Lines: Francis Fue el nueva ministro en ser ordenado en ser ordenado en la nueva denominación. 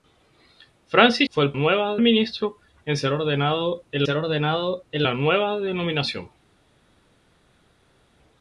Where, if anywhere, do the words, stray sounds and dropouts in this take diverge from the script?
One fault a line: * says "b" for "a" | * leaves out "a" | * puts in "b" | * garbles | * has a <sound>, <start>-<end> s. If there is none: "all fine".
all fine